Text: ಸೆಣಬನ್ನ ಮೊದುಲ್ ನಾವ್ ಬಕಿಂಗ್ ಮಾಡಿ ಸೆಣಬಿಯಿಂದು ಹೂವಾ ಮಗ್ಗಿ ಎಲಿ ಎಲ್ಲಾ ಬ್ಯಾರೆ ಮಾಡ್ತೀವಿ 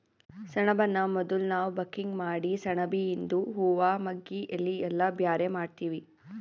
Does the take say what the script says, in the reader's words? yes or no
yes